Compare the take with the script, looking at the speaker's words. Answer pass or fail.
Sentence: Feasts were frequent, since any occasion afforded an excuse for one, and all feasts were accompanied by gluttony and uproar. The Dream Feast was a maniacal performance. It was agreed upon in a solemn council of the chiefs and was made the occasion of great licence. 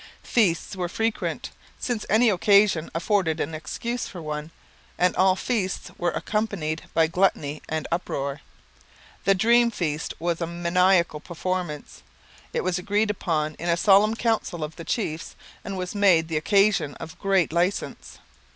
pass